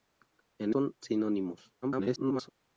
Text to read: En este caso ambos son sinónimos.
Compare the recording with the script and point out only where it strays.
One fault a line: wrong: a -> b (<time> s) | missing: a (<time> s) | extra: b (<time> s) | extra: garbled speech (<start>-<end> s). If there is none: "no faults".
missing: este caso ambos (0.7 s)
extra: garbled speech (1.8-2.5 s)